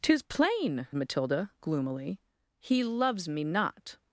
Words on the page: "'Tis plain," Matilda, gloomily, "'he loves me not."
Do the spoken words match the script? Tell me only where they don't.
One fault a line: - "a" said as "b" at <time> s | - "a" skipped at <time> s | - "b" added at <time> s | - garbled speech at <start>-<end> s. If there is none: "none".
none